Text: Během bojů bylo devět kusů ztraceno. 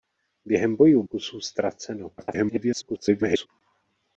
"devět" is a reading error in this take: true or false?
true